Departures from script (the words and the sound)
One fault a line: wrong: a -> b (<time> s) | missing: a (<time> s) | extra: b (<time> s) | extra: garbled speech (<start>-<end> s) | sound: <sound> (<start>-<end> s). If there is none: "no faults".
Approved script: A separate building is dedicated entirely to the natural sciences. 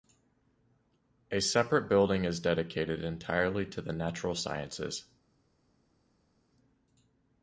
no faults